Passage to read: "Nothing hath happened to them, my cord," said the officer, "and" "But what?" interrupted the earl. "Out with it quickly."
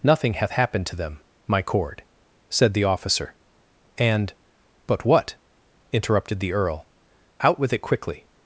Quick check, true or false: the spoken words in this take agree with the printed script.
true